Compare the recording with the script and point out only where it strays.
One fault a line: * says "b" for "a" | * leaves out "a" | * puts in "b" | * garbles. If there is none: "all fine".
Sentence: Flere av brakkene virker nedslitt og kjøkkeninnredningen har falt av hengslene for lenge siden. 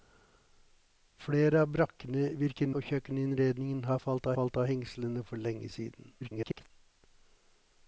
* leaves out "nedslitt"
* puts in "falt"
* garbles